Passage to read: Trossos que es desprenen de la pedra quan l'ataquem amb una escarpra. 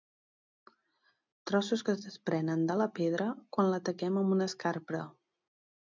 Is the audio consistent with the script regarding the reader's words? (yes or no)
yes